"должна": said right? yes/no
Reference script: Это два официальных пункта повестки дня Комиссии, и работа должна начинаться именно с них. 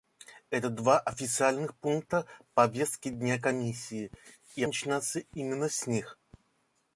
no